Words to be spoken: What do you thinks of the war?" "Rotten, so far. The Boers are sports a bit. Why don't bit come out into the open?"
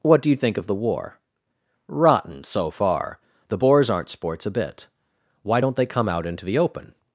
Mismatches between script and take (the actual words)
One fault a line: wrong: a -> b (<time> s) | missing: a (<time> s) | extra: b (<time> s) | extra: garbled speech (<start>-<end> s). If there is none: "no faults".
wrong: thinks -> think (0.4 s)
wrong: are -> aren't (3.9 s)
wrong: bit -> they (5.8 s)